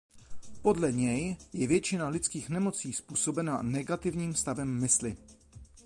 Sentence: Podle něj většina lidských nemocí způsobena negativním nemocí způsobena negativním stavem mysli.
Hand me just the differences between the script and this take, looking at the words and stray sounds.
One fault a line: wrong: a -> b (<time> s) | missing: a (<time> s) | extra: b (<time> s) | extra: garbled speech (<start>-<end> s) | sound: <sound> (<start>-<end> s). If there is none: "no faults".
extra: je (1.5 s)
missing: nemocí způsobena negativním (4.3 s)